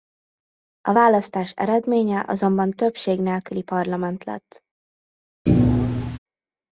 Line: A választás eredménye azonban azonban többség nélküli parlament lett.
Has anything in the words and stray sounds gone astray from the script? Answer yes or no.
yes